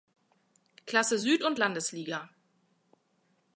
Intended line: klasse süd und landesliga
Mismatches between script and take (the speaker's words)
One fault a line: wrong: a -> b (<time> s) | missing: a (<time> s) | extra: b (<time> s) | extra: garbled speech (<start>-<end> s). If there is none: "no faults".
no faults